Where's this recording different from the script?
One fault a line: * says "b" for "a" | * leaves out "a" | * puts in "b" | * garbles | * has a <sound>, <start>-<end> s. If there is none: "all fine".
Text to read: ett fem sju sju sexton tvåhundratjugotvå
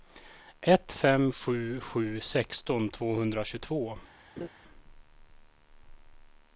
* has a laugh, 4.4-4.5 s